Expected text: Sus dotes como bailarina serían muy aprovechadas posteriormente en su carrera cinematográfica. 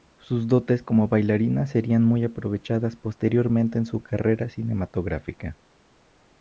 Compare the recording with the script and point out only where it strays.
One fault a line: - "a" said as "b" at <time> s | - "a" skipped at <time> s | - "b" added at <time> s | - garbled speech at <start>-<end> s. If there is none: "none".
none